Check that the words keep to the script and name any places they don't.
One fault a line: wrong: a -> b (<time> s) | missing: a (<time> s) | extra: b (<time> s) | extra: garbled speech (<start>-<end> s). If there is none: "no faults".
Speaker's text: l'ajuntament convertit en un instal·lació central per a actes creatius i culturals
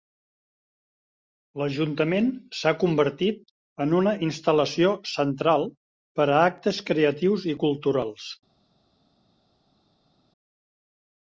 extra: s'ha (2.6 s)
wrong: un -> una (4.0 s)